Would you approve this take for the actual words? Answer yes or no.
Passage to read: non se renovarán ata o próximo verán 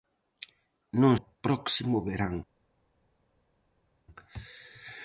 no